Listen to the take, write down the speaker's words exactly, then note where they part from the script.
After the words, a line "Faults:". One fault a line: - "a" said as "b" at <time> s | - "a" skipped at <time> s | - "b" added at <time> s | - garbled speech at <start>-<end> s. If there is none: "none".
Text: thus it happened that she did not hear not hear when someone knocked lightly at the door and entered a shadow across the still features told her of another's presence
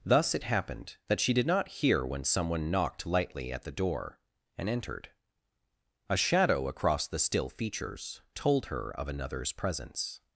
thus it happened that she did not hear when someone knocked lightly at the door and entered a shadow across the still features told her of another's presence
Faults:
- "not hear" skipped at 2.0 s